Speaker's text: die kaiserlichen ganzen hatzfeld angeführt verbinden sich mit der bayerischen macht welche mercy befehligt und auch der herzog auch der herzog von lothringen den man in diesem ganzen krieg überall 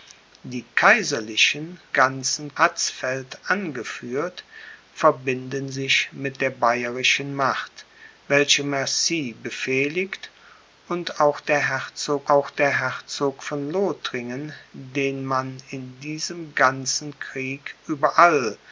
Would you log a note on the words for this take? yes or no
no